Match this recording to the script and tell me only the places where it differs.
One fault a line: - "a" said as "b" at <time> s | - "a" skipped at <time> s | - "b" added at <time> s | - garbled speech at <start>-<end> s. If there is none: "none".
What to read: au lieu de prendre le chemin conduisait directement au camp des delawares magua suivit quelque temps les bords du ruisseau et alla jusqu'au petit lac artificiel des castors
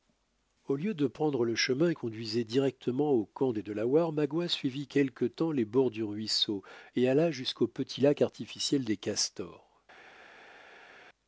none